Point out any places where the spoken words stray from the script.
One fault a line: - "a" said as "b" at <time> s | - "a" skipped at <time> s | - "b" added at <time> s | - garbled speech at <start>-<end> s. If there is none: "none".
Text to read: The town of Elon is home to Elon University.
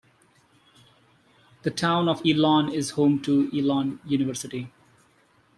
none